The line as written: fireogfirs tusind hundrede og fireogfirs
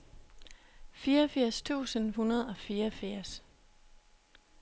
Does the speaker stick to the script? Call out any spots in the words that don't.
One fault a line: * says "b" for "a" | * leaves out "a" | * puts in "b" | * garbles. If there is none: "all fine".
all fine